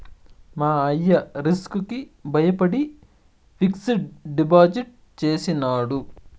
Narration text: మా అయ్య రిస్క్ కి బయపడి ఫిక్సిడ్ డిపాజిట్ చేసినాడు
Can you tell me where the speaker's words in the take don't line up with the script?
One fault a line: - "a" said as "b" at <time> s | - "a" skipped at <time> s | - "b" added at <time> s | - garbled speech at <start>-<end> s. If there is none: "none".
none